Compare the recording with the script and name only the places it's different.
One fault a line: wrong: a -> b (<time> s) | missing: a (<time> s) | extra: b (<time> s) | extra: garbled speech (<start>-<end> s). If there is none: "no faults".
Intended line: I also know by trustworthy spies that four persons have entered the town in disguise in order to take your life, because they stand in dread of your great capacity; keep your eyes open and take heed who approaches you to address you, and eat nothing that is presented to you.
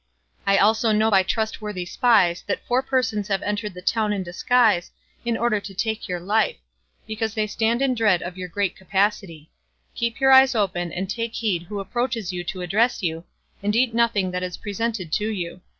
no faults